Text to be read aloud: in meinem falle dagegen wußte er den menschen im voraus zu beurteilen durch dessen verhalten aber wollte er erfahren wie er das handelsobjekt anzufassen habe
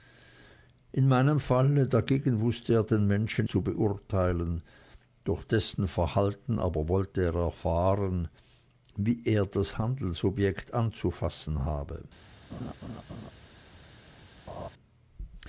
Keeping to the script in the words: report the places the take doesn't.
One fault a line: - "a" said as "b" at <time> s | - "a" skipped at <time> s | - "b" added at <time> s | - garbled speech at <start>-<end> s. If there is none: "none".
- "im voraus" skipped at 3.5 s